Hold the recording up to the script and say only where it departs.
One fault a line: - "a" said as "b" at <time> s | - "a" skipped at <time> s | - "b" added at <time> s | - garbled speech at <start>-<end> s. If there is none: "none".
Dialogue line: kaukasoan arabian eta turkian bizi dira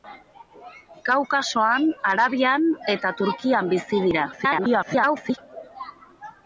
- garbled speech at 4.3-5.4 s